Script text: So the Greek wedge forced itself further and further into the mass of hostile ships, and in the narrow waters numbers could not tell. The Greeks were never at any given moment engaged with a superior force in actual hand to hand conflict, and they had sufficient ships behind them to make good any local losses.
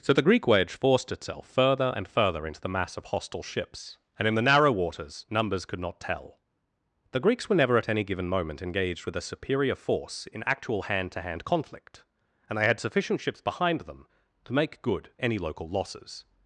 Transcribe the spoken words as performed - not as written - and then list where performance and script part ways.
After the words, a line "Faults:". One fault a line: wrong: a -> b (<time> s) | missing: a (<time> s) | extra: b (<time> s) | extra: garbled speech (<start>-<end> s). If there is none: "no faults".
So the Greek wedge forced itself further and further into the mass of hostile ships, and in the narrow waters numbers could not tell. The Greeks were never at any given moment engaged with a superior force in actual hand to hand conflict, and they had sufficient ships behind them to make good any local losses.
Faults:
no faults